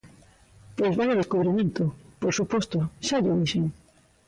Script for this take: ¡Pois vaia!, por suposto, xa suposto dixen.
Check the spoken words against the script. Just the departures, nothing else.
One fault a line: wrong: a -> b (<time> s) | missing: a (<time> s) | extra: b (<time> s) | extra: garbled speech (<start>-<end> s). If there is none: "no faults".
extra: descubrimento (1.2 s)
wrong: suposto -> llo (3.2 s)